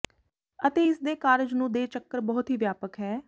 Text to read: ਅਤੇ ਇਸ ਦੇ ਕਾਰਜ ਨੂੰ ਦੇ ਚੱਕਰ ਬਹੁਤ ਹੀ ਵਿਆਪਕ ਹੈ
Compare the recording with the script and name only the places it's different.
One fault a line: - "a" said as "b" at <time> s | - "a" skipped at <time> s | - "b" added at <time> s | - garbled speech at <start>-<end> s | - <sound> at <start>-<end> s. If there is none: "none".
none